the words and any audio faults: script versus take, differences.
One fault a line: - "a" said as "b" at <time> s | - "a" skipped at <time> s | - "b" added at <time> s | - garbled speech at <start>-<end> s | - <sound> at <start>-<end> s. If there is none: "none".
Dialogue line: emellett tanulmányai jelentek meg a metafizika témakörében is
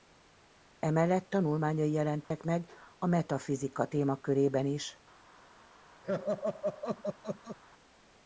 - dropout at 2.2-2.3 s
- laugh at 6.0-7.6 s